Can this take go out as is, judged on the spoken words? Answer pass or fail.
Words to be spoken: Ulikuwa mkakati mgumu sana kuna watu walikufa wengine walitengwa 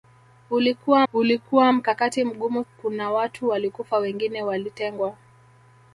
fail